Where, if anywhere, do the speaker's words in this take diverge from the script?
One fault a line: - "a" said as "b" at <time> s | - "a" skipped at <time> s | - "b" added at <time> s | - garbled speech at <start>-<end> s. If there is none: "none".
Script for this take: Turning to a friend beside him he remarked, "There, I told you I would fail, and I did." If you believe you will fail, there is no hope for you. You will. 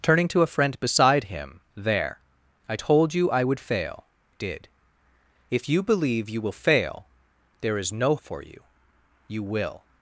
- "he remarked" skipped at 1.6 s
- "and I" skipped at 4.1 s
- "hope" skipped at 8.2 s